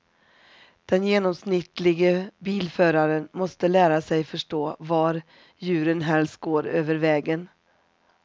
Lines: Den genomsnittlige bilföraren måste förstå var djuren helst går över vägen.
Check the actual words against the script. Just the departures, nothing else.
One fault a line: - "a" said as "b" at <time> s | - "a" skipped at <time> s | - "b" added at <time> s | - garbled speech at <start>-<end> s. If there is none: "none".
- "lära sig" added at 3.7 s